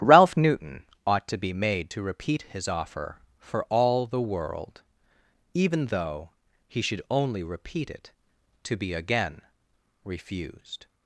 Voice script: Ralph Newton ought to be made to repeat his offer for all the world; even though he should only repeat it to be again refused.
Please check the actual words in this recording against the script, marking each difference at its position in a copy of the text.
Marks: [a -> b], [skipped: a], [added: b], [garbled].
Ralph Newton ought to be made to repeat his offer for all the world; even though he should only repeat it to be again refused.